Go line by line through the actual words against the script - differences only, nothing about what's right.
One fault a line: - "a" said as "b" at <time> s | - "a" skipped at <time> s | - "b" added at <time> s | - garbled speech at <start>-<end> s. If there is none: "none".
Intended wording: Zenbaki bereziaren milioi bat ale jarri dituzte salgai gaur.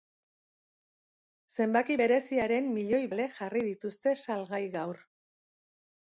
- "bat" skipped at 3.0 s